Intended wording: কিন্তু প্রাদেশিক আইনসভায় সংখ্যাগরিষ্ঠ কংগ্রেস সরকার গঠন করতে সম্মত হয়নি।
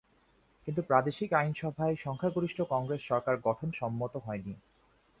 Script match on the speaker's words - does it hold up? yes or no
no